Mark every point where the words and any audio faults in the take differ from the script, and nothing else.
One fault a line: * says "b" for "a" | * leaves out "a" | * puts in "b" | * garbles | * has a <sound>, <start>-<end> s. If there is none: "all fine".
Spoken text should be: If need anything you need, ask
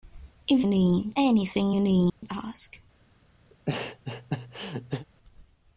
* has a dropout, 2.1-2.2 s
* has a laugh, 3.5-5.1 s